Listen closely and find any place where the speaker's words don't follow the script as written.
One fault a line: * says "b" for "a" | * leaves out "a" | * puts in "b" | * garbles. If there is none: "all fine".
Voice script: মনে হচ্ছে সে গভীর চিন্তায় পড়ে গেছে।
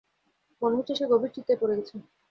all fine